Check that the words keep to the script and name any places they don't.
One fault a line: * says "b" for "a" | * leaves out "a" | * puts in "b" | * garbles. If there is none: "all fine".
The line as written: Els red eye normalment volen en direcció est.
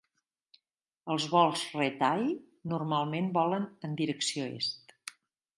* puts in "vols"